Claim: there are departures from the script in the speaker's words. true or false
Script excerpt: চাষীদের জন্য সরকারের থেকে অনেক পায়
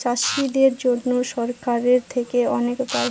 false